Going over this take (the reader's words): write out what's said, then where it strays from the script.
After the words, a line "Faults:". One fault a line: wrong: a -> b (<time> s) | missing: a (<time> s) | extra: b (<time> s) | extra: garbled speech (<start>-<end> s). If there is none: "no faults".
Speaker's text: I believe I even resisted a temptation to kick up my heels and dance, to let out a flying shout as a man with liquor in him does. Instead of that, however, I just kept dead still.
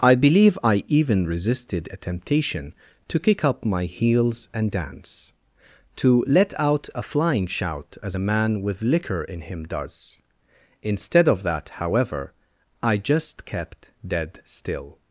I believe I even resisted a temptation to kick up my heels and dance, to let out a flying shout as a man with liquor in him does. Instead of that, however, I just kept dead still.
Faults:
no faults